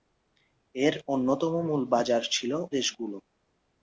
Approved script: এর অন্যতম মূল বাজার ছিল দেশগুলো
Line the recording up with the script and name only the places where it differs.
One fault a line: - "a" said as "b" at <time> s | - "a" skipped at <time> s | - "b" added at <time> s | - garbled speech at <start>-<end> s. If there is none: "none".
none